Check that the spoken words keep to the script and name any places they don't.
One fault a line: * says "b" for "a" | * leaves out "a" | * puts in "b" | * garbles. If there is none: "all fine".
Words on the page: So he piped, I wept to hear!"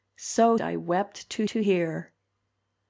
* leaves out "he piped"
* puts in "to"